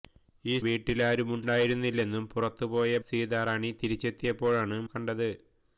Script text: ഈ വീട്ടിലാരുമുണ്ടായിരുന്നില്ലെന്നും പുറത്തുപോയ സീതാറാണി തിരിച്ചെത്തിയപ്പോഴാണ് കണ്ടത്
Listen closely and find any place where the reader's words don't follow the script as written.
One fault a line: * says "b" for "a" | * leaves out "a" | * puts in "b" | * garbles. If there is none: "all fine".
all fine